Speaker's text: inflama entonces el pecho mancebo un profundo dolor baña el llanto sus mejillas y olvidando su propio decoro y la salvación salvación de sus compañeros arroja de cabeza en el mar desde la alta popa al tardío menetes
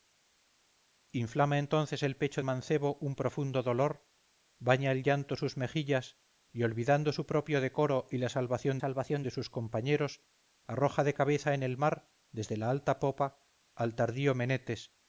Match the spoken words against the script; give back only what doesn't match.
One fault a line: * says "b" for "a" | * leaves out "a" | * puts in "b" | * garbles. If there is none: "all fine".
all fine